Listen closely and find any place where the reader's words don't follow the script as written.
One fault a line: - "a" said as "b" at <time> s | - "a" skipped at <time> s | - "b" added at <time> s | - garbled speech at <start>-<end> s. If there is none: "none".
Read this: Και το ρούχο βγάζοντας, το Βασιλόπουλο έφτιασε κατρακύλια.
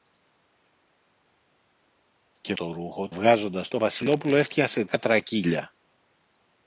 none